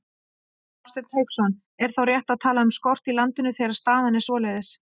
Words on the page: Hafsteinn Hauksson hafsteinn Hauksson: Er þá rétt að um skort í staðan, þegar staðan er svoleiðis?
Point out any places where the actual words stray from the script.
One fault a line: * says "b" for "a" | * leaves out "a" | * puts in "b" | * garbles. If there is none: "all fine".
* leaves out "hafsteinn Hauksson"
* puts in "tala"
* says "landinu" for "staðan"